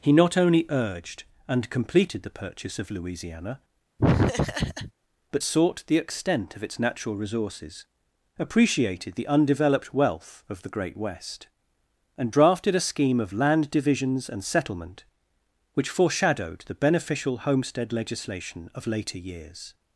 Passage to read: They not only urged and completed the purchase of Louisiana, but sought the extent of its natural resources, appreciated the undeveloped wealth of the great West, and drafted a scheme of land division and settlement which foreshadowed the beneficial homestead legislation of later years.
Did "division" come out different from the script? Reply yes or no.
yes